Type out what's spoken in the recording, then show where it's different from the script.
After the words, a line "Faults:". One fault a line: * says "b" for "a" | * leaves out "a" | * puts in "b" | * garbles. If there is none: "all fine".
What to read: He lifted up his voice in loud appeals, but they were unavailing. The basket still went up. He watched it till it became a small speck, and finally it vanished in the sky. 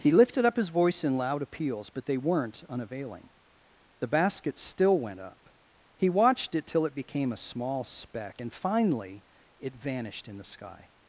He lifted up his voice in loud appeals, but they weren't unavailing. The basket still went up. He watched it till it became a small speck, and finally it vanished in the sky.
Faults:
* says "weren't" for "were"